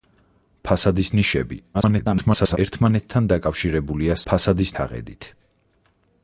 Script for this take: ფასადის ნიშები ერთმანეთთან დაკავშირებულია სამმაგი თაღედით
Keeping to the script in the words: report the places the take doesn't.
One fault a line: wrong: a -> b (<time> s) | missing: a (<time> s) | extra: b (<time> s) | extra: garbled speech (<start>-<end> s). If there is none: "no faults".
extra: garbled speech (1.7-2.6 s)
wrong: სამმაგი -> ფასადის (4.3 s)